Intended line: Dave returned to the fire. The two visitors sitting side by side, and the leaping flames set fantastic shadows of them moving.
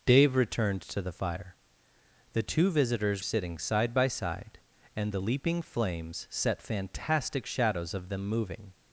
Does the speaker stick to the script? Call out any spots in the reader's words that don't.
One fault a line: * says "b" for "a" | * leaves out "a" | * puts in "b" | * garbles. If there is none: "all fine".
all fine